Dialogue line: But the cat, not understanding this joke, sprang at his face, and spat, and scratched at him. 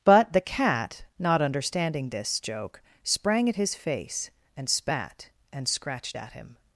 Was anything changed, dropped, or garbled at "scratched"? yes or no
no